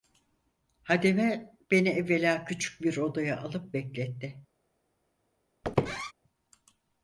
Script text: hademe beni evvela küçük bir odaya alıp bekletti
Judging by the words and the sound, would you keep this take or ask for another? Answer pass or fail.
fail